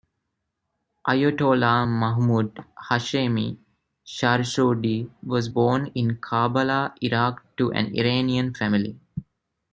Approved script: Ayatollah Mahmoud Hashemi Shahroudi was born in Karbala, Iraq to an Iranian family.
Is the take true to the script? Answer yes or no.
yes